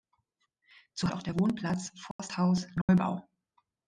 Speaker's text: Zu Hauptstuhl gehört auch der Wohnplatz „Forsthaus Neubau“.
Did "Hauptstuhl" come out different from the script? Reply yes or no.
yes